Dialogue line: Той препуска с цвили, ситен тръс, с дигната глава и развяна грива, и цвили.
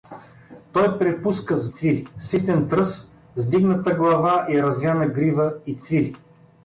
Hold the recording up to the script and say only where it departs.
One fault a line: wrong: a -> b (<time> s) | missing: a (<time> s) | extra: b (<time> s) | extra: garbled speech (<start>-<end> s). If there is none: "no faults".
no faults